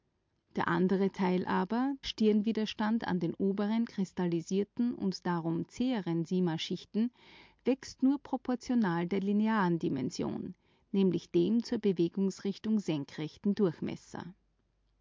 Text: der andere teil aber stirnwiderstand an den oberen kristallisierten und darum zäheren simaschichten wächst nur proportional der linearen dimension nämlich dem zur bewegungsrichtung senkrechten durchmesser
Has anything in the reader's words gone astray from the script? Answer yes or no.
no